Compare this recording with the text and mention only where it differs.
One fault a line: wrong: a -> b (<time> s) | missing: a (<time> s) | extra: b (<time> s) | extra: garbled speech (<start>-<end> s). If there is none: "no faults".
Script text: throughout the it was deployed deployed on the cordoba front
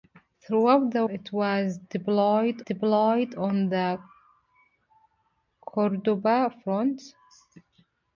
no faults